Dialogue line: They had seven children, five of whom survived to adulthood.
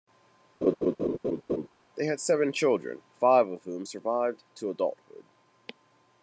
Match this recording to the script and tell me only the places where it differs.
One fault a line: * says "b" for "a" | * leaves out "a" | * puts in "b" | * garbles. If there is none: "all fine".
all fine